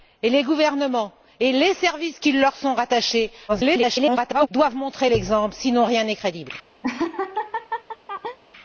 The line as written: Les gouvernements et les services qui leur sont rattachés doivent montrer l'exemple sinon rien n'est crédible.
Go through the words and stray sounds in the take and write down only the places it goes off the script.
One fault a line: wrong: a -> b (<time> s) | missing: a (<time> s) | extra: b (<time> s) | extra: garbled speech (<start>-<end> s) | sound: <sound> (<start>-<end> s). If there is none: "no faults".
extra: garbled speech (3.5-4.5 s)
sound: laugh (6.8-8.4 s)